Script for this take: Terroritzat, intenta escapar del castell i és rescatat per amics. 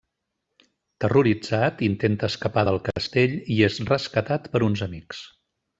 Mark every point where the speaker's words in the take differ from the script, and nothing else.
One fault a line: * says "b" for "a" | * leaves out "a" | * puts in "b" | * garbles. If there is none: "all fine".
* puts in "uns"